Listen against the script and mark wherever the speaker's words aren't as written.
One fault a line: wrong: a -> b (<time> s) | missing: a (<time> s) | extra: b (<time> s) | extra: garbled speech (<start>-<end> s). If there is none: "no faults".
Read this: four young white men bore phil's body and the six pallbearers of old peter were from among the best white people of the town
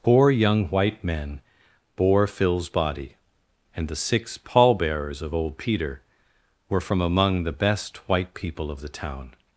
no faults